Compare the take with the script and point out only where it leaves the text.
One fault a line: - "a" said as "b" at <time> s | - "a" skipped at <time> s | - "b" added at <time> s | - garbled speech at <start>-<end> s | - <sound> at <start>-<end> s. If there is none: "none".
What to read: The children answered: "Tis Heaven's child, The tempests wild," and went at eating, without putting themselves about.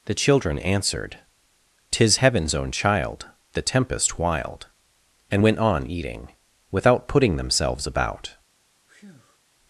- "own" added at 2.5 s
- "tempests" said as "tempest" at 3.6 s
- "at" said as "on" at 5.6 s
- breath at 8.9-9.4 s